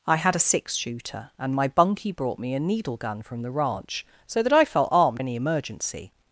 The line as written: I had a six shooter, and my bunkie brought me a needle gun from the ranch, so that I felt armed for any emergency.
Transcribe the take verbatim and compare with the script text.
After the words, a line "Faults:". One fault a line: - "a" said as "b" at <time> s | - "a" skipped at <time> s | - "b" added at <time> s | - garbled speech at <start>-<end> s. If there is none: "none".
I had a six shooter, and my bunkie brought me a needle gun from the ranch, so that I felt armed any emergency.
Faults:
- "for" skipped at 5.2 s